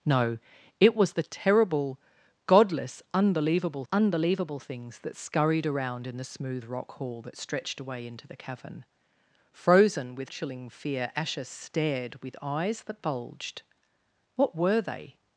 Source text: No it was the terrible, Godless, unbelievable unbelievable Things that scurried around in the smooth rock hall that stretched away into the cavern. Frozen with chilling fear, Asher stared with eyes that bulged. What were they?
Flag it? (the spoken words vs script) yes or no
no